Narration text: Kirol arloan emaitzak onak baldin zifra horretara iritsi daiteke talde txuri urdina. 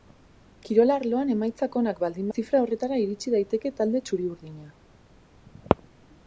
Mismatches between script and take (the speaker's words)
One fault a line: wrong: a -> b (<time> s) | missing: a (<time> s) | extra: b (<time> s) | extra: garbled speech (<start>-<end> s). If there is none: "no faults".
no faults